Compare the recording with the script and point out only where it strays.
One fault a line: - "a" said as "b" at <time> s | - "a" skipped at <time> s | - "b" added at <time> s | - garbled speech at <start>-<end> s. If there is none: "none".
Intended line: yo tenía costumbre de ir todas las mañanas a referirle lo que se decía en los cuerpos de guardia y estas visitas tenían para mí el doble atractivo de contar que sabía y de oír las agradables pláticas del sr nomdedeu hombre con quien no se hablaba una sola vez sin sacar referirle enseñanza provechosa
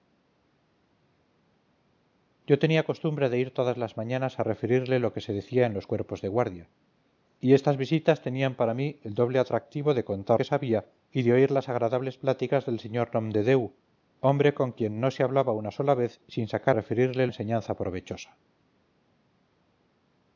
none